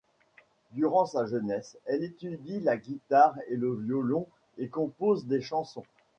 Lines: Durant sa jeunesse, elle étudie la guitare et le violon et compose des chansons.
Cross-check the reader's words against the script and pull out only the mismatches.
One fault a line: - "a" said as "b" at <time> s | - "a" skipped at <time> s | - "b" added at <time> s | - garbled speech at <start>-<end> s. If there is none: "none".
none